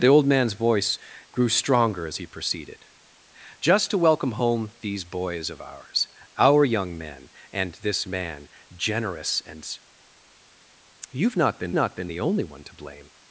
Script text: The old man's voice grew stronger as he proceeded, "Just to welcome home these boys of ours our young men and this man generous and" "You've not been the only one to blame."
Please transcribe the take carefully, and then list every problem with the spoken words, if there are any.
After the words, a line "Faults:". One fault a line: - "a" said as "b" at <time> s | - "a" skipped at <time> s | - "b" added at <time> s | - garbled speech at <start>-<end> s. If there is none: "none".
The old man's voice grew stronger as he proceeded, "Just to welcome home these boys of ours our young men and this man generous and" "You've not been not been the only one to blame."
Faults:
- "not been" added at 11.7 s